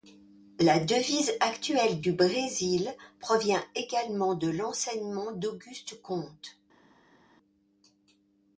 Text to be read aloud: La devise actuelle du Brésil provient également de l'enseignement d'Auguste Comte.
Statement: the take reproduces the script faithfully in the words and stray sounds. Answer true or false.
true